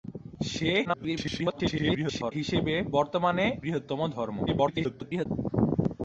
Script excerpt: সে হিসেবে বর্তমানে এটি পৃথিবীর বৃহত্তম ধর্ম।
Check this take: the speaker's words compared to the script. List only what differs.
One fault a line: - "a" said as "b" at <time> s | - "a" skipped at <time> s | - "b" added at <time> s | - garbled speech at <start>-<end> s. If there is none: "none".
- garbled speech at 0.8-2.3 s
- "এটি পৃথিবীর" skipped at 3.4 s
- garbled speech at 4.5-5.3 s